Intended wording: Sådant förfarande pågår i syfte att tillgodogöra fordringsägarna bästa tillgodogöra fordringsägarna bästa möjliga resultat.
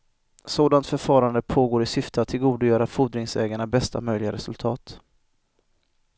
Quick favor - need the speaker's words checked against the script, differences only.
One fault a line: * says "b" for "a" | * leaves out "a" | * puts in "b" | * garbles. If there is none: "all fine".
* leaves out "tillgodogöra fordringsägarna bästa"